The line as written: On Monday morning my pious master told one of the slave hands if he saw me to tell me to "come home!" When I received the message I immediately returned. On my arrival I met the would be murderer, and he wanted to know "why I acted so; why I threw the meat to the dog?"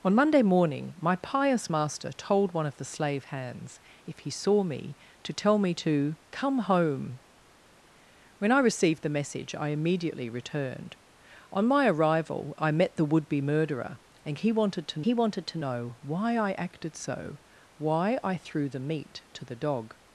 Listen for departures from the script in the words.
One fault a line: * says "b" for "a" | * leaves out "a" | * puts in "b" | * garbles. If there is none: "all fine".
* puts in "he wanted to"